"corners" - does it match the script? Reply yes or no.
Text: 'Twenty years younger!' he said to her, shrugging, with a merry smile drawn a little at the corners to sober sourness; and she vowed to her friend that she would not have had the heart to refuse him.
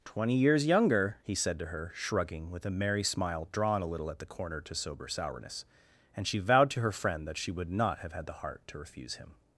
no